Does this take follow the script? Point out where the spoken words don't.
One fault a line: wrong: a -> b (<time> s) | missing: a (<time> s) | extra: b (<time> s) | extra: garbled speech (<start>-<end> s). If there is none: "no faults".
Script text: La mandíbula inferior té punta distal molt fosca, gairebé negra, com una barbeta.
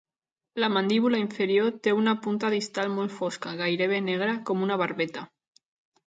extra: una (2.0 s)